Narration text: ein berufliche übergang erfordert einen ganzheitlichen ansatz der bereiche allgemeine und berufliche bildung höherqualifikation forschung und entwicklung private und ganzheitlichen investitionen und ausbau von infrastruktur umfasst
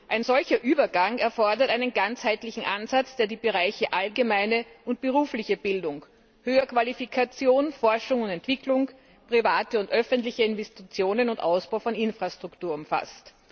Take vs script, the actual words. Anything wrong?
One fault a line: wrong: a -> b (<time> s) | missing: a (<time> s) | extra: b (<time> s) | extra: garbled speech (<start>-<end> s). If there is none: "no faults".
wrong: berufliche -> solcher (0.2 s)
extra: die (3.3 s)
wrong: ganzheitlichen -> öffentliche (9.9 s)